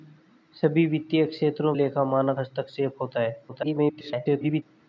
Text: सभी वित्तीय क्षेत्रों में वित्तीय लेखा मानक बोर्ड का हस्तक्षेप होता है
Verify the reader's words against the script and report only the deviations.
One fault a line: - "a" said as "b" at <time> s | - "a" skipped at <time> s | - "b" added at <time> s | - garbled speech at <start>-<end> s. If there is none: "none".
- "में वित्तीय" skipped at 1.7 s
- "बोर्ड का" skipped at 2.4 s
- garbled speech at 3.5-4.6 s